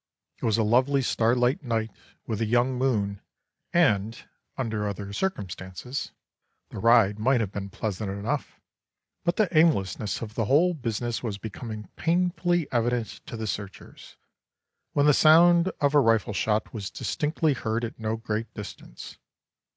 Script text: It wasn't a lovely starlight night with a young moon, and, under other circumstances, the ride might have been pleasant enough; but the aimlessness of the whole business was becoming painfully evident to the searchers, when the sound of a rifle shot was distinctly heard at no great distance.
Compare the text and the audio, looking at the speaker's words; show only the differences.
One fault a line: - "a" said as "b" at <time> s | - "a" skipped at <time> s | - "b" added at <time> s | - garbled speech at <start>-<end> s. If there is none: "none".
- "wasn't" said as "was" at 0.5 s